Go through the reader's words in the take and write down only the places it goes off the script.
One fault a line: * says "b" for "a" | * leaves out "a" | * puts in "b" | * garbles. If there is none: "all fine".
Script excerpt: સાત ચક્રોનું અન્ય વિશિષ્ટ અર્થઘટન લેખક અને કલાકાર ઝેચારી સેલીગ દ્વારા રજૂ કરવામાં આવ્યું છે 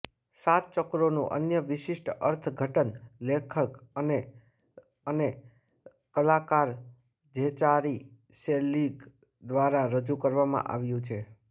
* puts in "અને"